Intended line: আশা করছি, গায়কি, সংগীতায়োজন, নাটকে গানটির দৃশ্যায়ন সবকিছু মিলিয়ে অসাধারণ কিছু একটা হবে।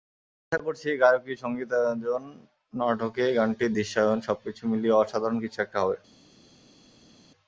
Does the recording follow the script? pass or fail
pass